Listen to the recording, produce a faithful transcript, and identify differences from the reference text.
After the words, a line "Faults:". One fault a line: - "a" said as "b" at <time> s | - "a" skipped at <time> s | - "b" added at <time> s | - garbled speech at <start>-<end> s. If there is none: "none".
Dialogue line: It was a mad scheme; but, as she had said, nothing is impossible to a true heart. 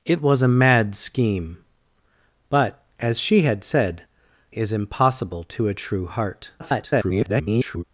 It was a mad scheme; but, as she had said, is impossible to a true heart. [garbled]
Faults:
- "nothing" skipped at 4.0 s
- garbled speech at 6.6-7.8 s